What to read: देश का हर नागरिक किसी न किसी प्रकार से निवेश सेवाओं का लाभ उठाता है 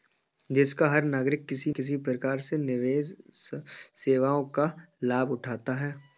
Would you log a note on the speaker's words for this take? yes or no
yes